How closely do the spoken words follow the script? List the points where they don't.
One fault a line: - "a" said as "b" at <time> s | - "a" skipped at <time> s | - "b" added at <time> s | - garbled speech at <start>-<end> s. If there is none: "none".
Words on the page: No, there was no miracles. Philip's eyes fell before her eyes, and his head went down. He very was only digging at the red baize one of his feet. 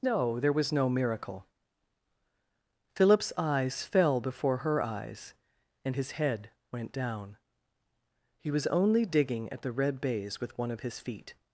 - "miracles" said as "miracle" at 0.9 s
- "very" skipped at 8.5 s
- "with" added at 10.4 s